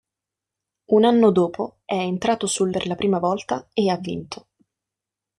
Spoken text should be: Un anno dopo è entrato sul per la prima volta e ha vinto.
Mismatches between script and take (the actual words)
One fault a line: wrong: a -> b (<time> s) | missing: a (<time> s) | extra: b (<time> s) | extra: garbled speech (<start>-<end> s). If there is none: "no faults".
no faults